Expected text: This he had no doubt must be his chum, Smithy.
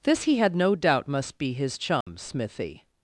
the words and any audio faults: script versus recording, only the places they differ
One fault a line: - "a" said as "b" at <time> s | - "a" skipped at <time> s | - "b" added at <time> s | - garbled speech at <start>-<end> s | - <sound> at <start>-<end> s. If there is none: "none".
- dropout at 2.0-2.1 s